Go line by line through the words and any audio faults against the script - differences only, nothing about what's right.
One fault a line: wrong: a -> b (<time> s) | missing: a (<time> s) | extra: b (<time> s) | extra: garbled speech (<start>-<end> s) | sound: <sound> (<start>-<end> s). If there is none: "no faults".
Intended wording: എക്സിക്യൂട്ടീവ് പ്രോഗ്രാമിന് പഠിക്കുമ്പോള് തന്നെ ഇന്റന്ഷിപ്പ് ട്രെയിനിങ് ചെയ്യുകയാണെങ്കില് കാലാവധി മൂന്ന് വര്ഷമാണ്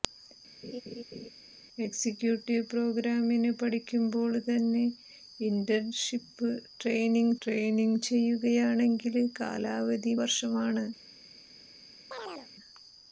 sound: laugh (0.6-1.3 s)
extra: ട്രെയിനിങ് (7.4 s)
missing: മൂന്ന് (10.1 s)
sound: chirp (12.1-12.5 s)